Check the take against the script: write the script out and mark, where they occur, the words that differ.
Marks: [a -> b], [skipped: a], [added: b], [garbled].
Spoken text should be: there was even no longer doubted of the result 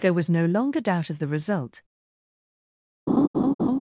there was [skipped: even] no longer [doubted -> doubt] of the result